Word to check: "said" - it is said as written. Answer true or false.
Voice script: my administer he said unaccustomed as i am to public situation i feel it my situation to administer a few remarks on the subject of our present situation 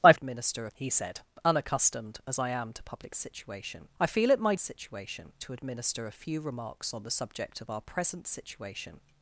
true